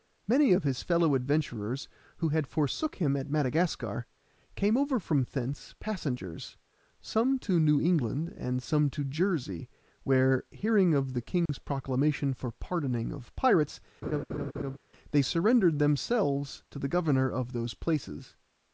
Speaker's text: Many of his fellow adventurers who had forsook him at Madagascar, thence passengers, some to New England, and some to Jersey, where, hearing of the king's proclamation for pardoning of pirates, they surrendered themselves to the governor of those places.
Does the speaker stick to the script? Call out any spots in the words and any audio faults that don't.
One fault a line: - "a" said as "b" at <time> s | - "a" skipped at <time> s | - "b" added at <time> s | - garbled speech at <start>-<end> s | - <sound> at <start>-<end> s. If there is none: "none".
- "came over from" added at 4.5 s
- dropout at 11.5-11.5 s
- laugh at 14.0-14.8 s